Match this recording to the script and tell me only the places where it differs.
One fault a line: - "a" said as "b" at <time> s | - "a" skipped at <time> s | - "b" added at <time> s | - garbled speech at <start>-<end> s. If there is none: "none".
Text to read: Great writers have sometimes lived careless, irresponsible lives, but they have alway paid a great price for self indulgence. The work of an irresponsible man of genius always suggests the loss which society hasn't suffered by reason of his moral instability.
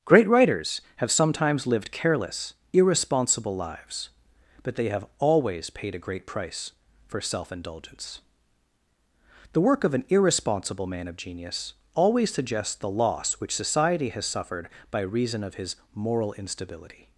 - "alway" said as "always" at 5.2 s
- "hasn't" said as "has" at 14.1 s